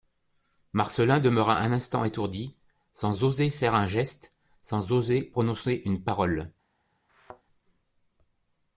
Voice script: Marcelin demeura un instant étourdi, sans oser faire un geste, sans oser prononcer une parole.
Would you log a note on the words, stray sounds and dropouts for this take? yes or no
yes